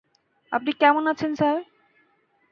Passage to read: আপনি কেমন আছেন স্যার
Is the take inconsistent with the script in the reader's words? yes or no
no